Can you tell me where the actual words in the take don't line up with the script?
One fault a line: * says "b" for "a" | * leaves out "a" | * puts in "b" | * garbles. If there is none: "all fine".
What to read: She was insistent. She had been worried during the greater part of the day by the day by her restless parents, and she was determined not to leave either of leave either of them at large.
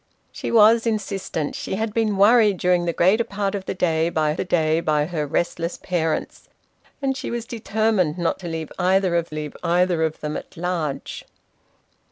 all fine